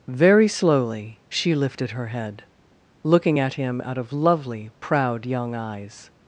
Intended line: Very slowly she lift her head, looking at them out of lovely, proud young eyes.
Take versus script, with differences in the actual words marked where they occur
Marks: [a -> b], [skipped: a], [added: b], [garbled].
Very slowly she [lift -> lifted] her head, looking at [them -> him] out of lovely, proud young eyes.